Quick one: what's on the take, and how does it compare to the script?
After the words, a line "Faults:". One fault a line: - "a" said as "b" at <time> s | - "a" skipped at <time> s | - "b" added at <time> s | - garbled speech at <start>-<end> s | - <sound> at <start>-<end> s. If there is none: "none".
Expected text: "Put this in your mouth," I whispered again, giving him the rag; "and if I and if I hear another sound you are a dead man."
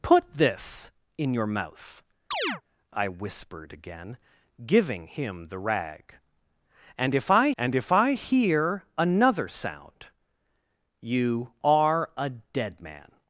"Put this in your mouth," I whispered again, giving him the rag; "and if I and if I hear another sound you are a dead man."
Faults:
- chirp at 2.3-2.6 s